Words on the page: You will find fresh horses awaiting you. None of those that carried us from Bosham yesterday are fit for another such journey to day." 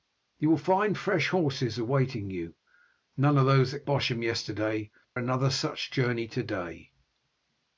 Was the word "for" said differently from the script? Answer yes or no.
yes